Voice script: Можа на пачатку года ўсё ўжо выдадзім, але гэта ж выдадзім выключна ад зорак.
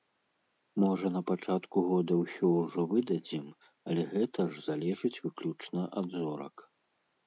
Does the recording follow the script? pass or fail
fail